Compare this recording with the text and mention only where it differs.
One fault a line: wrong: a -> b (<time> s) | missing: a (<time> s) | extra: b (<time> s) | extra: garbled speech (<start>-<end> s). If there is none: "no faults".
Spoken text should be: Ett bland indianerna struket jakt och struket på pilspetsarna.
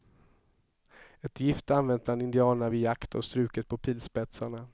extra: gift använt (1.4 s)
wrong: struket -> vid (2.7 s)